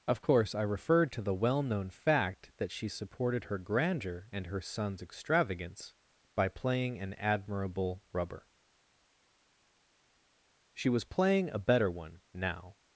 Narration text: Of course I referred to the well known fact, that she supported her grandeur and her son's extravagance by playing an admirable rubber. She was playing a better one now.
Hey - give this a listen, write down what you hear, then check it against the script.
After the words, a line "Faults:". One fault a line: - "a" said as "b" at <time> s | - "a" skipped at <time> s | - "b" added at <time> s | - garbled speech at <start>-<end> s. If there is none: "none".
Of course I referred to the well known fact, that she supported her grandeur and her son's extravagance by playing an admirable rubber. She was playing a better one now.
Faults:
none